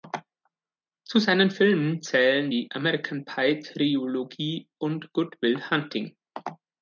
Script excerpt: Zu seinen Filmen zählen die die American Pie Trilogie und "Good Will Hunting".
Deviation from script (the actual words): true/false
true